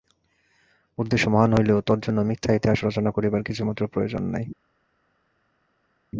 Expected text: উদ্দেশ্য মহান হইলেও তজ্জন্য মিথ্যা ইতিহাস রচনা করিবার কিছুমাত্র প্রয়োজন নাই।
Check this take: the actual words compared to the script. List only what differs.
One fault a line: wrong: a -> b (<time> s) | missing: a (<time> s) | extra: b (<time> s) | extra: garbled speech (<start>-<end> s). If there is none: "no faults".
no faults